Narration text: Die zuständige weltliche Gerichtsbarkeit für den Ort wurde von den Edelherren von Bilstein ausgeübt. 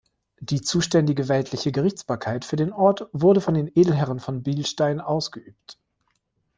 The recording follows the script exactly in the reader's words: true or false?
true